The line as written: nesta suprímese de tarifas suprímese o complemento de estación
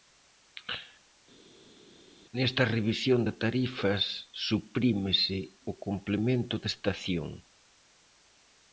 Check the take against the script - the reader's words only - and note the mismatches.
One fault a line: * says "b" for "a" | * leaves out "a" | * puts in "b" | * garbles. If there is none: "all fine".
* says "revisión" for "suprímese"